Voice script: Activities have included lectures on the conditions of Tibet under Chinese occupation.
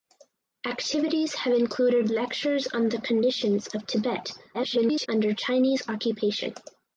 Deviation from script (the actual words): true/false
true